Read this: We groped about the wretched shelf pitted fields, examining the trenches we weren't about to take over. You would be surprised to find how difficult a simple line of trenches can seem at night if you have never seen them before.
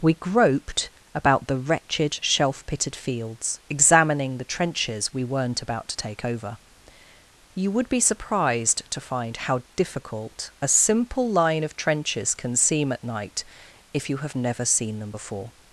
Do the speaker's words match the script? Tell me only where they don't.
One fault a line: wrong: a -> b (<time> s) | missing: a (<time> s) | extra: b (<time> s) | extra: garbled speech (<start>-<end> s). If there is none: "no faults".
no faults